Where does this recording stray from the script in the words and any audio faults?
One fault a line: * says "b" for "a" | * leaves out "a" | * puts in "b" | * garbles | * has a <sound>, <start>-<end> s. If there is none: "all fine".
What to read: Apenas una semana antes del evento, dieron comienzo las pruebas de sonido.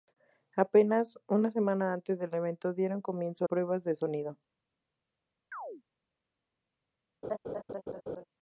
* leaves out "las"
* has a chirp, 5.5-5.8 s
* has a laugh, 7.2-8.2 s